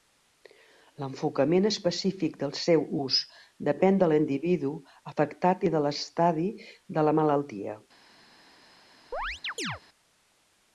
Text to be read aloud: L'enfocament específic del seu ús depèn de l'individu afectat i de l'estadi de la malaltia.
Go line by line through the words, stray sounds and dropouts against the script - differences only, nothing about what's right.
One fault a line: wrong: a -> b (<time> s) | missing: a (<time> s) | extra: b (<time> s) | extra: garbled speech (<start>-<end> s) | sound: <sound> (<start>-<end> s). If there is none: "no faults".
sound: chirp (9.1-9.8 s)